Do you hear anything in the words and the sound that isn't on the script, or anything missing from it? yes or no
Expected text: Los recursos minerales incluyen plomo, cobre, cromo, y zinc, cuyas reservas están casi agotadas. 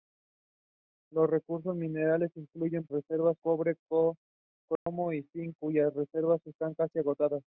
yes